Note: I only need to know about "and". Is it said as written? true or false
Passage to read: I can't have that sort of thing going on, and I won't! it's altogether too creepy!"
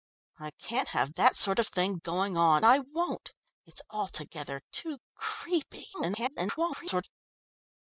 false